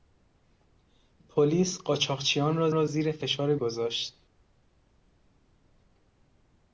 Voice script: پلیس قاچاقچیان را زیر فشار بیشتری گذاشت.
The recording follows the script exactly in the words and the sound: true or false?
false